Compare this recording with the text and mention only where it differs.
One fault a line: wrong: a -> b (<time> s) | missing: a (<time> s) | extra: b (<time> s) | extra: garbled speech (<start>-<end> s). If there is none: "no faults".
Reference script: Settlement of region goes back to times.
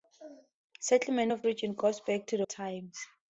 no faults